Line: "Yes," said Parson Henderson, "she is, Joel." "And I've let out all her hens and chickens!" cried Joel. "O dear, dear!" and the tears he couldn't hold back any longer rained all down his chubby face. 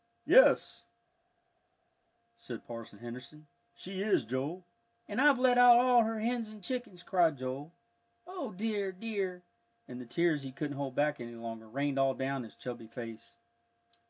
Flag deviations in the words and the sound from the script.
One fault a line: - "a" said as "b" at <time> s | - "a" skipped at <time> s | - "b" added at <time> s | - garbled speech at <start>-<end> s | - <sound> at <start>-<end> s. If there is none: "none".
none